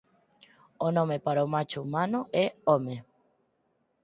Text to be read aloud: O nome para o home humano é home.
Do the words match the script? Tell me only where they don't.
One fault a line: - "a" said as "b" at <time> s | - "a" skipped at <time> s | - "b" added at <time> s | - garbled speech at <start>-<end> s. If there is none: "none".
- "home" said as "macho" at 1.5 s